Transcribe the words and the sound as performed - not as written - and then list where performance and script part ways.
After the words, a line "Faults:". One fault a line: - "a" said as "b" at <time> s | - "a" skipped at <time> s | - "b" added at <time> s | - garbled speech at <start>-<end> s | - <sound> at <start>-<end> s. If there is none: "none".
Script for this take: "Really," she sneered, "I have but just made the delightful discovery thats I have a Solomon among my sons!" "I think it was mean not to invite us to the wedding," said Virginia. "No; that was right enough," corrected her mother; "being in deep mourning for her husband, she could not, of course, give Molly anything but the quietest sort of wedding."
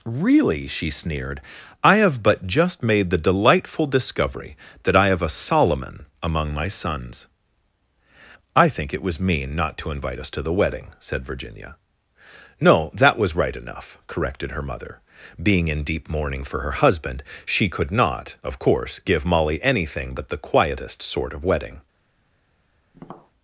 "Really," she sneered, "I have but just made the delightful discovery that I have a Solomon among my sons!" "I think it was mean not to invite us to the wedding," said Virginia. "No; that was right enough," corrected her mother; "being in deep mourning for her husband, she could not, of course, give Molly anything but the quietest sort of wedding."
Faults:
- "thats" said as "that" at 4.8 s
- tap at 22.9-23.3 s